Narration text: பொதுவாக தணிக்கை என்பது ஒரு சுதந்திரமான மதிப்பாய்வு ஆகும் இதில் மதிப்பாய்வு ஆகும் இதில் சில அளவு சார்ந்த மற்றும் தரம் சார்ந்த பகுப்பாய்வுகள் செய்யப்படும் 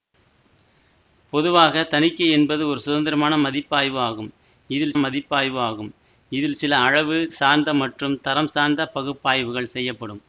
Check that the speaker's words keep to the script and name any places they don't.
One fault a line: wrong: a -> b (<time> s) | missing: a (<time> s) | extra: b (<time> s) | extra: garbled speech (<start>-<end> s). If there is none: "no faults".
no faults